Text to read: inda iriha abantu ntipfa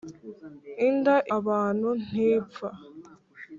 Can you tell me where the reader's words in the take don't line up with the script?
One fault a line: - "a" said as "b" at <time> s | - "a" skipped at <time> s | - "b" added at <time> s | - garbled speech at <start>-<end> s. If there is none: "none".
- "iriha" skipped at 1.1 s